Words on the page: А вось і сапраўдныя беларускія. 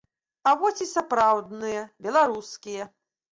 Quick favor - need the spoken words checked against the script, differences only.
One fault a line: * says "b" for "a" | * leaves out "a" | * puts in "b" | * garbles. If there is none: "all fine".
all fine